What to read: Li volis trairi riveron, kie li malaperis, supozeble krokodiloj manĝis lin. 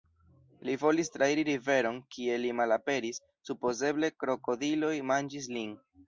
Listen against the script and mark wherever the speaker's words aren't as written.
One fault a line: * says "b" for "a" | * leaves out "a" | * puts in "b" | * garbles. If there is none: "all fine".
all fine